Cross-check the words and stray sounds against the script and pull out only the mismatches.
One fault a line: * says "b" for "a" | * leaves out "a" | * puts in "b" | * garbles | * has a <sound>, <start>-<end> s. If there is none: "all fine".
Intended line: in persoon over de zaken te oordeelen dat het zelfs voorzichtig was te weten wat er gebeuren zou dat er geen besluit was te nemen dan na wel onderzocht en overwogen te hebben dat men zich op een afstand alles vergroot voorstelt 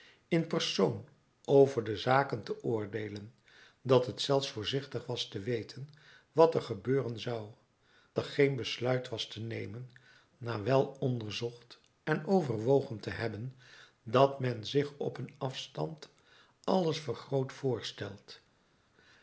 * leaves out "dat"
* leaves out "dan"